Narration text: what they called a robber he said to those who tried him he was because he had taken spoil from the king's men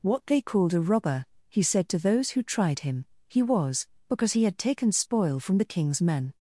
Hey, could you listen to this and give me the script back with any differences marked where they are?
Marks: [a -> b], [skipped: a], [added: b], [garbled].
what they called a robber he said to those who tried him he was because he had taken spoil from the king's men